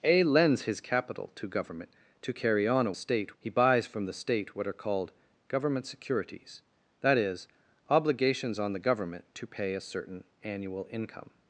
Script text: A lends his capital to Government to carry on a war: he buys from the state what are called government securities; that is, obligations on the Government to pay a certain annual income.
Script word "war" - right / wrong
wrong